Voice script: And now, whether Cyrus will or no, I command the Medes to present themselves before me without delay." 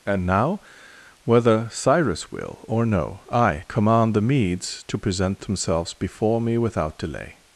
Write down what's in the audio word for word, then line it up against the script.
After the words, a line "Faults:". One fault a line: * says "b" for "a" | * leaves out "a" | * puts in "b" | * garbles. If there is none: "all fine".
And now, whether Cyrus will or no, I command the Medes to present themselves before me without delay."
Faults:
all fine